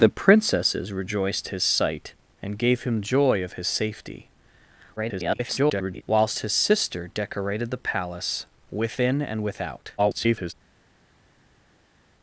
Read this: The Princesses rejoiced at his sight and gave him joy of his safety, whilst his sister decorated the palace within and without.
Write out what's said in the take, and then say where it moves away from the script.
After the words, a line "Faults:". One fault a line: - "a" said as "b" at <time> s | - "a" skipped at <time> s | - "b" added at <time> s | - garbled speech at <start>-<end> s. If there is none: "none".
The Princesses rejoiced his sight and gave him joy of his safety, [garbled] whilst his sister decorated the palace within and without. [garbled]
Faults:
- "at" skipped at 1.5 s
- garbled speech at 5.0-6.0 s
- garbled speech at 10.0-10.5 s